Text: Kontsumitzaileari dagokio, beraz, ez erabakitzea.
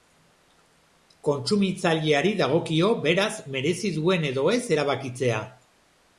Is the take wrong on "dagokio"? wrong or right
right